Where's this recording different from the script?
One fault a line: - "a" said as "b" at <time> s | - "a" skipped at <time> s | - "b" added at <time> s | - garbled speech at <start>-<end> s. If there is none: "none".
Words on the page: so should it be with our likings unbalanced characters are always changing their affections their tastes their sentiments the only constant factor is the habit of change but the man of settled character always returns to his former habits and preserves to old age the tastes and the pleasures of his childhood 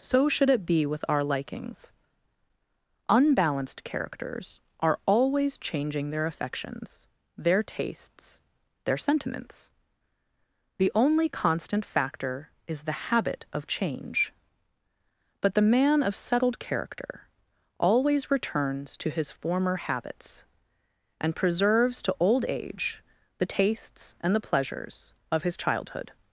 none